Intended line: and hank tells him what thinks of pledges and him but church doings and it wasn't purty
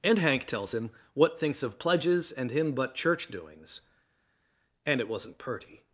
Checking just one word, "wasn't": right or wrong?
right